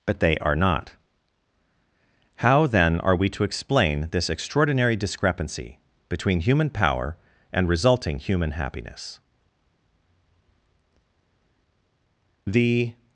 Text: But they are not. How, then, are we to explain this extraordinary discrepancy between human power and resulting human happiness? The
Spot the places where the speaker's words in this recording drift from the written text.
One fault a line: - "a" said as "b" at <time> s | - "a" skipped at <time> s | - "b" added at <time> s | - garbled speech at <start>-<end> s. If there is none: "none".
none